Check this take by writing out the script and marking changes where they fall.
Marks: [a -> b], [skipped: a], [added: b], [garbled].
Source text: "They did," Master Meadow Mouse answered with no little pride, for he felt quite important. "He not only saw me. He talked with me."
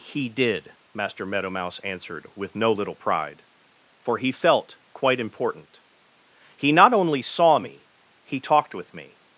["They -> He] did," Master Meadow Mouse answered with no little pride, for he felt quite important. "He not only saw me. He talked with me."